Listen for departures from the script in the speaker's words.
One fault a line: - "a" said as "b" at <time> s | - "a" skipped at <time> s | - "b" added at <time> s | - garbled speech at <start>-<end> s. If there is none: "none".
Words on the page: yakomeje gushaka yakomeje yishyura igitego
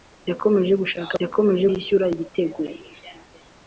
none